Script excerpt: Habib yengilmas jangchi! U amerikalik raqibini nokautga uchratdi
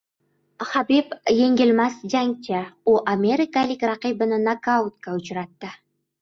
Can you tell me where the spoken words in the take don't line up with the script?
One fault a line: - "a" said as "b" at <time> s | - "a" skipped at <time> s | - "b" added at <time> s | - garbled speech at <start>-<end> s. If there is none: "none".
none